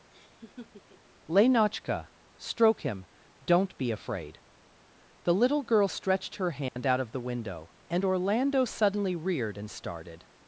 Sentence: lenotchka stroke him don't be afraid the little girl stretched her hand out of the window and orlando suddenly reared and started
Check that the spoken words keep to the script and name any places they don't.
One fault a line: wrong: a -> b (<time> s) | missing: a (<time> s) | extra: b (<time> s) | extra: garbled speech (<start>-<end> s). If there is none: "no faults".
no faults